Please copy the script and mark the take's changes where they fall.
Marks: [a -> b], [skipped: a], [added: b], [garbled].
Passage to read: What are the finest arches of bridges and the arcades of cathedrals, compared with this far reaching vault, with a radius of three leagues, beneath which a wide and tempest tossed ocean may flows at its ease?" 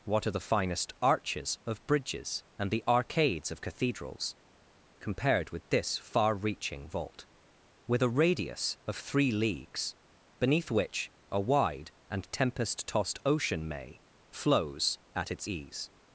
What are the finest arches of bridges and the arcades of cathedrals, compared with this far reaching vault, with a radius of three leagues, beneath which a wide and tempest tossed ocean may flows at its ease?"